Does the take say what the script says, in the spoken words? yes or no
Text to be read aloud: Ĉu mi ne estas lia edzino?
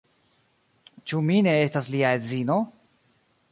yes